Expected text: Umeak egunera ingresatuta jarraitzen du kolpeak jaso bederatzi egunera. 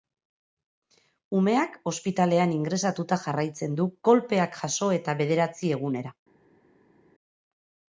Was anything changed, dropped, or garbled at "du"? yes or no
no